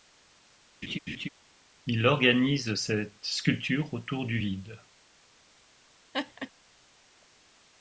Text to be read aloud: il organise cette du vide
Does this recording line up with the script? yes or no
no